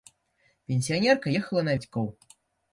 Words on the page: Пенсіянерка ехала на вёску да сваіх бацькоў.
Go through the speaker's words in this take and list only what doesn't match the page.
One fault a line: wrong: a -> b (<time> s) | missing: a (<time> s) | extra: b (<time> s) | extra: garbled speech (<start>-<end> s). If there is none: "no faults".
missing: вёску да сваіх (1.8 s)